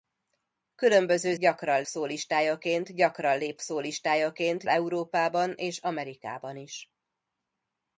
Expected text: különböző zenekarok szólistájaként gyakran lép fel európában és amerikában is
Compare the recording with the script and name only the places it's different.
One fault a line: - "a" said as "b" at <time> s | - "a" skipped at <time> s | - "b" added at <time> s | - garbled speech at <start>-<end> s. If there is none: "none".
- "zenekarok" said as "gyakran" at 1.4 s
- "fel" said as "szólistájaként" at 3.6 s